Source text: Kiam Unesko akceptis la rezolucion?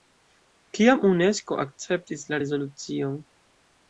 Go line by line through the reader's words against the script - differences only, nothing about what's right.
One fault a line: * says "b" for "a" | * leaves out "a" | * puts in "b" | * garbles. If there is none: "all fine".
all fine